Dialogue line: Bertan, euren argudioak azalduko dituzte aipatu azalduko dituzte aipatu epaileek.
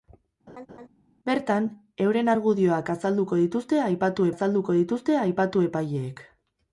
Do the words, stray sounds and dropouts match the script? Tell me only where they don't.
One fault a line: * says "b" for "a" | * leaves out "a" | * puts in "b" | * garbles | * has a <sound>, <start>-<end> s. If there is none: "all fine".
* has a laugh, 0.5-0.9 s